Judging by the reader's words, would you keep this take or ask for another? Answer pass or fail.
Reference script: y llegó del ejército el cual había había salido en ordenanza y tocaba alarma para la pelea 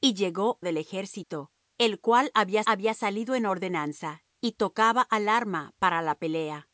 pass